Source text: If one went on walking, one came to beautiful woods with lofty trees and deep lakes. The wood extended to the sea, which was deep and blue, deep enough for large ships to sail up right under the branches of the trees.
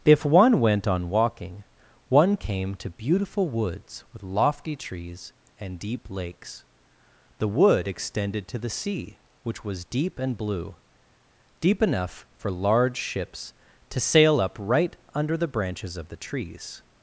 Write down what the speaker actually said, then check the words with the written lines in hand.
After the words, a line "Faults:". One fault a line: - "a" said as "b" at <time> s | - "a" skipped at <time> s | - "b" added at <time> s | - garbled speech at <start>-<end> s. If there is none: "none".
If one went on walking, one came to beautiful woods with lofty trees and deep lakes. The wood extended to the sea, which was deep and blue, deep enough for large ships to sail up right under the branches of the trees.
Faults:
none